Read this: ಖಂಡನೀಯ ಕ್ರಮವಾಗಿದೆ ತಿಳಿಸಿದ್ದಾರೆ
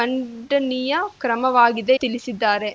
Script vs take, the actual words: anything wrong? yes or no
no